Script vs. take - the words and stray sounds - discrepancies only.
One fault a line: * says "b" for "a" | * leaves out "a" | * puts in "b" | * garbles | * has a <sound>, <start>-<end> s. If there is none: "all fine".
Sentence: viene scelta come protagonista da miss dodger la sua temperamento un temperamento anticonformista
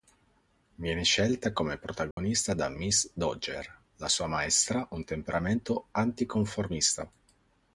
* has a dropout, 2.1-2.2 s
* says "maestra" for "temperamento"